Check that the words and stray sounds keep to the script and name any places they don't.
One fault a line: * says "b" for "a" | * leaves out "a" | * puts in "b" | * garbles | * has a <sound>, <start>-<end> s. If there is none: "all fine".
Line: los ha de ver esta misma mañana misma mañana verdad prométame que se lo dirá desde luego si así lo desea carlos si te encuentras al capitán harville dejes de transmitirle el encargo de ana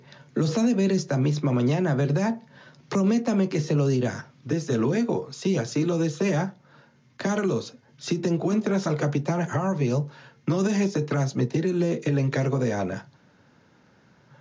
* leaves out "misma mañana"
* puts in "no"